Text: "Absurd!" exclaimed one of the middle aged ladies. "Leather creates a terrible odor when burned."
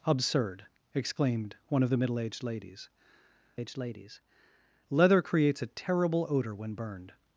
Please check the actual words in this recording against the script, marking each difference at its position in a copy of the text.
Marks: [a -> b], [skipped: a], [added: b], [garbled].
"Absurd!" exclaimed one of the middle aged ladies. [added: aged ladies] "Leather creates a terrible odor when burned."